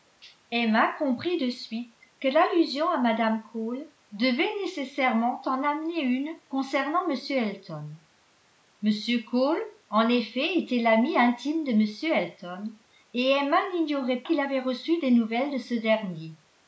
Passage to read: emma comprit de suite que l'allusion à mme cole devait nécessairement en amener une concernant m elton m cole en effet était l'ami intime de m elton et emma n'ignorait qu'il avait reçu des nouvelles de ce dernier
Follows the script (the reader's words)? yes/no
yes